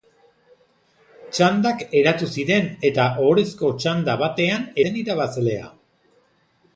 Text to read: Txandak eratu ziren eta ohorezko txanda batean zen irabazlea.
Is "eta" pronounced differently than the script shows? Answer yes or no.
no